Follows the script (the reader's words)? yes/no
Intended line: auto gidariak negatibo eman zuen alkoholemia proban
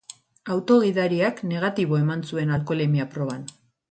yes